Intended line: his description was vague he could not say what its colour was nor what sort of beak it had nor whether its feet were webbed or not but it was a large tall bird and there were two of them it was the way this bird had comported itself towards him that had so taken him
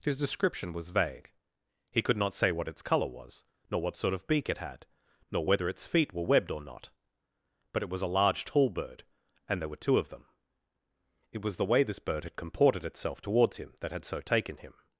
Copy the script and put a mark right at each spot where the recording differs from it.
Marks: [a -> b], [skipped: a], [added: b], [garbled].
his description was vague he could not say what its colour was nor what sort of beak it had nor whether its feet were webbed or not but it was a large tall bird and there were two of them it was the way this bird had comported itself towards him that had so taken him